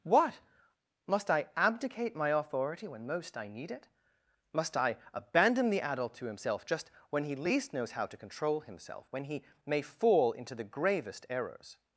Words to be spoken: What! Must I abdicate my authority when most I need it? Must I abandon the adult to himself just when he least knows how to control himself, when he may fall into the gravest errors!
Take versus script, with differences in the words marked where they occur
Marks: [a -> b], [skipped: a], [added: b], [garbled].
What! Must I abdicate my authority when most I need it? Must I abandon the adult to himself just when he least knows how to control himself, when he may fall into the gravest errors!